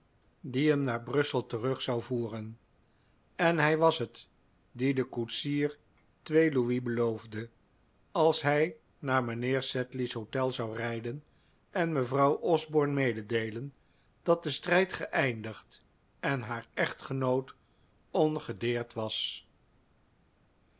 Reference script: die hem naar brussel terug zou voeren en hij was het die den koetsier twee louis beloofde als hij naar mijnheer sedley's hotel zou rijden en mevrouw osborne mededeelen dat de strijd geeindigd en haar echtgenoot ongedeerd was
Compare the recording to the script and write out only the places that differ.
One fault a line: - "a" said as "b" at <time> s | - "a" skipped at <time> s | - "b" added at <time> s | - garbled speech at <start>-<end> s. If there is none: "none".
none